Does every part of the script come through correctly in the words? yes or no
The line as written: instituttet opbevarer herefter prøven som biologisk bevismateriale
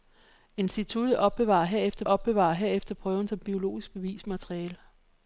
no